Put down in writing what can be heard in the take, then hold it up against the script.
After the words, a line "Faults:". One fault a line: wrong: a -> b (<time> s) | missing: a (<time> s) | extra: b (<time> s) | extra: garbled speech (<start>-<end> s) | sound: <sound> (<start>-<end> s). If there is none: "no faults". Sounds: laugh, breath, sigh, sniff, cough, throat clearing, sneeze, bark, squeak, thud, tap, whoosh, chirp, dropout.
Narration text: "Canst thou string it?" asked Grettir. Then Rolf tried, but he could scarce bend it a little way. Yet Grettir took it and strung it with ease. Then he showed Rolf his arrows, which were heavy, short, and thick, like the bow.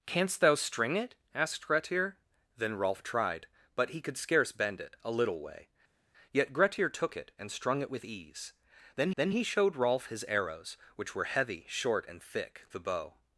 "Canst thou string it?" asked Grettir. Then Rolf tried, but he could scarce bend it a little way. Yet Grettir took it and strung it with ease. Then then he showed Rolf his arrows, which were heavy, short, and thick, the bow.
Faults:
extra: then (9.2 s)
missing: like (12.7 s)